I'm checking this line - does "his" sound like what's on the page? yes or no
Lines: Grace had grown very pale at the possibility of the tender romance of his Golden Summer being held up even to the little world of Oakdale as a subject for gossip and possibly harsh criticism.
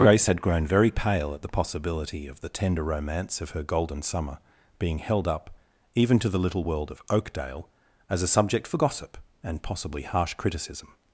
no